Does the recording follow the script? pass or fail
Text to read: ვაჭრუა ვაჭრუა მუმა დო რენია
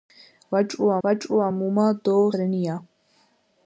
pass